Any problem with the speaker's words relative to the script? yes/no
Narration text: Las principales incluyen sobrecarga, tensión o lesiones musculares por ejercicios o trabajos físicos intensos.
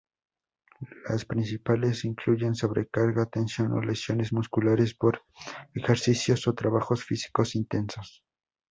no